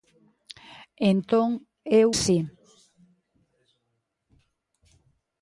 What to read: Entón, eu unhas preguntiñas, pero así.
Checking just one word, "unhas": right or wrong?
wrong